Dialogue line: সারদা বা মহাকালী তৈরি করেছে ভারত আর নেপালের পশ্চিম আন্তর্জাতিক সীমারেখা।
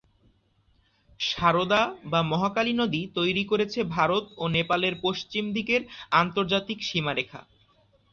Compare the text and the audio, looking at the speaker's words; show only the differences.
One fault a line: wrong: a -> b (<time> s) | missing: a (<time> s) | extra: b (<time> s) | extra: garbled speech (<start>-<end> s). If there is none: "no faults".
extra: নদী (2.7 s)
wrong: আর -> ও (4.4 s)
extra: দিকের (5.5 s)